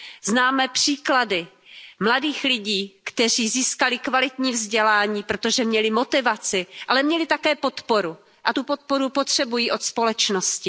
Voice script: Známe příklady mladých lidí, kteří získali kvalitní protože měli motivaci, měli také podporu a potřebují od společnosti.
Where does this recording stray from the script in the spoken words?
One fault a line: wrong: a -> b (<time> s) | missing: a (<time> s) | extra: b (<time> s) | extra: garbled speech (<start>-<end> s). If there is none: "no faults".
extra: vzdělání (4.5 s)
extra: ale (6.9 s)
extra: tu podporu (8.5 s)